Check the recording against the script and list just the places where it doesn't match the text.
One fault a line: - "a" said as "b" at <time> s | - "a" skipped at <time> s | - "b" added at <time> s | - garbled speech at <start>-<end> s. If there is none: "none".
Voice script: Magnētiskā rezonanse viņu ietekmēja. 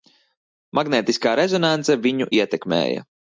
none